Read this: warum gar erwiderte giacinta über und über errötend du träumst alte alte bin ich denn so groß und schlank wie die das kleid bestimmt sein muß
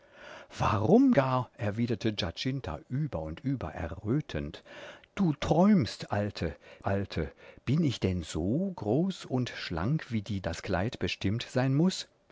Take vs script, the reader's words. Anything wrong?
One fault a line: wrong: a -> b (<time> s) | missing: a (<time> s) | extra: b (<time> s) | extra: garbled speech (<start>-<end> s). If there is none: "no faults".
no faults